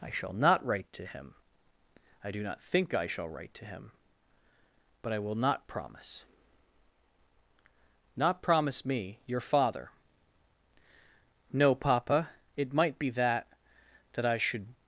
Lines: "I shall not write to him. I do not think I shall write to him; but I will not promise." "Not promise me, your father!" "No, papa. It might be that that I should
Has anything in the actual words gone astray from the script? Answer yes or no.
no